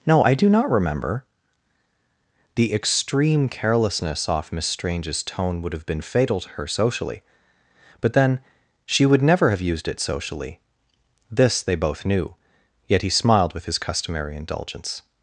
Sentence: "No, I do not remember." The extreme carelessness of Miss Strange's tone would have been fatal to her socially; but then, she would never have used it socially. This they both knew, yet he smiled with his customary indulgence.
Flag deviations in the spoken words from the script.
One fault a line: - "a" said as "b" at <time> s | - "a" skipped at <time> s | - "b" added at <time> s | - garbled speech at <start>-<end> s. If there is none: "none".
- "of" said as "off" at 4.3 s